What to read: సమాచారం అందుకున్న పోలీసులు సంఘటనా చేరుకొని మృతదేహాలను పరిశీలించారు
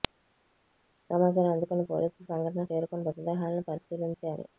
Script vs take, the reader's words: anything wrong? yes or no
no